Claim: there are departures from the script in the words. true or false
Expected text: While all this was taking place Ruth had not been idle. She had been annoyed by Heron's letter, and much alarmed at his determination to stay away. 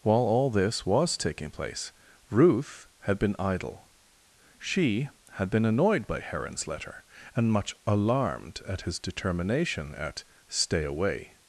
true